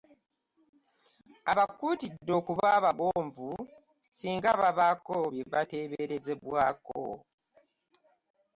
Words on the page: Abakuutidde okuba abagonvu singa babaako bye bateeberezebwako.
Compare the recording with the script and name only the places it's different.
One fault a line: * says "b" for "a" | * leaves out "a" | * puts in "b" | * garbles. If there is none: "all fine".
all fine